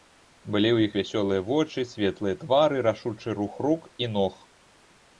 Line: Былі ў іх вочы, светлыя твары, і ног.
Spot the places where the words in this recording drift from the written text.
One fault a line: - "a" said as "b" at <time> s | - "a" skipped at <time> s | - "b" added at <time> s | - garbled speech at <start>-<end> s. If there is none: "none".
- "вясёлыя" added at 1.0 s
- "рашучы рух рук" added at 2.9 s